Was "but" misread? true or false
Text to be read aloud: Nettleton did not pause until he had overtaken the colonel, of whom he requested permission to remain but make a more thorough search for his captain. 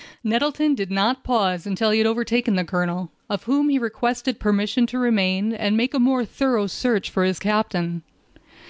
true